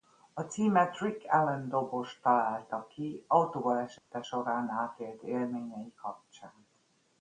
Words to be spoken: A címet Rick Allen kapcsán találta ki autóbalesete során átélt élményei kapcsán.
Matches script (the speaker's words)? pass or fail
fail